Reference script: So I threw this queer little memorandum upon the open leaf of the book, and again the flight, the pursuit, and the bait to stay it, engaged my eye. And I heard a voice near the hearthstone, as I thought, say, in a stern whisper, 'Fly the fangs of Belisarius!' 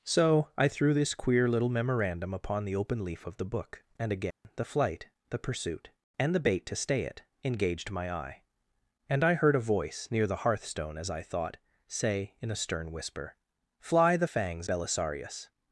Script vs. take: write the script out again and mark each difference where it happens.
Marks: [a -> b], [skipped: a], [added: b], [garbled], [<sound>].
So I threw this queer little memorandum upon the open leaf of the book, and again [dropout] the flight, the pursuit, and the bait to stay it, engaged my eye. And I heard a voice near the hearthstone, as I thought, say, in a stern whisper, 'Fly the fangs [skipped: of] Belisarius!'